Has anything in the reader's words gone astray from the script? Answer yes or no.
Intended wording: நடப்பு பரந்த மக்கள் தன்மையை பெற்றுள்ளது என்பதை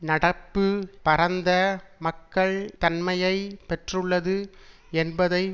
no